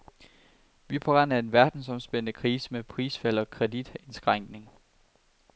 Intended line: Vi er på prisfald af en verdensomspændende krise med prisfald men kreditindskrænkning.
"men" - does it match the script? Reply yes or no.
no